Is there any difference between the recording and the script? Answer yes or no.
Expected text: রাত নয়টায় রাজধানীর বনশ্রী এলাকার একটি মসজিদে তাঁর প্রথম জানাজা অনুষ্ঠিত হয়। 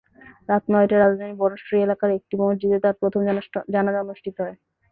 no